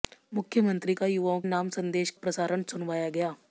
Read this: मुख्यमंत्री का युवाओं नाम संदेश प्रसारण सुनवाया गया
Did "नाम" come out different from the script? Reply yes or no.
no